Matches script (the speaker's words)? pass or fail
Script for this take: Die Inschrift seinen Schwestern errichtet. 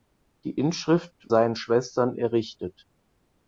pass